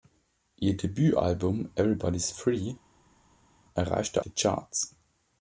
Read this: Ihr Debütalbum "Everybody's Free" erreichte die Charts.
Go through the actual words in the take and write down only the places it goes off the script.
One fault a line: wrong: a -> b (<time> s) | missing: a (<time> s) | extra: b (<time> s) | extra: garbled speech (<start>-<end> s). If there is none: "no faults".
no faults